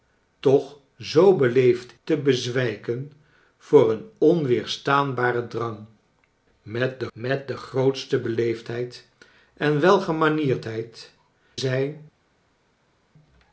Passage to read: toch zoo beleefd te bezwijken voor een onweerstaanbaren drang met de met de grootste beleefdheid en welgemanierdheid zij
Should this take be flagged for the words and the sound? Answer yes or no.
no